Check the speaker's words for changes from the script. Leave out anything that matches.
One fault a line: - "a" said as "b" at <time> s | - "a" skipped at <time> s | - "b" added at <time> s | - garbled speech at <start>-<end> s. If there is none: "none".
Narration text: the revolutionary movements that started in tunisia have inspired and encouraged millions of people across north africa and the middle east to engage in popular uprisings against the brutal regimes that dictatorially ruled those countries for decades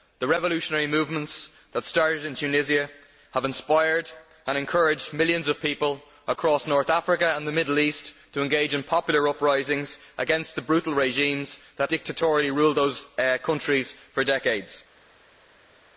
none